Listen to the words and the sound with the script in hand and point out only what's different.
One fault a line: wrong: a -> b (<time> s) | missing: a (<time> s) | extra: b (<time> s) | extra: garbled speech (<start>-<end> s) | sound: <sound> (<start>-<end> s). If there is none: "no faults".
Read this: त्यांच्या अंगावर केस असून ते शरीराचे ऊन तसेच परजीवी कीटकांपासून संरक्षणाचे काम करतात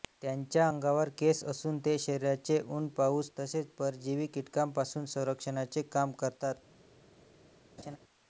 extra: पाऊस (2.9 s)
sound: laugh (7.8-8.0 s)